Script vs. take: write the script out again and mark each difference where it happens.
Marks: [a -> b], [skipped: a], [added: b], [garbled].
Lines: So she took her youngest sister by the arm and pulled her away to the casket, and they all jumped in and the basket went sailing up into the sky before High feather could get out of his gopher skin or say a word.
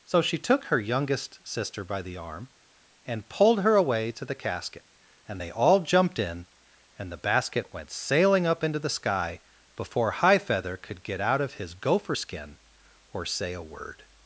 So she took her youngest sister by the arm and pulled her away to the casket, and they all jumped in and the basket went sailing up into the sky before High feather could get out of his gopher skin or say a word.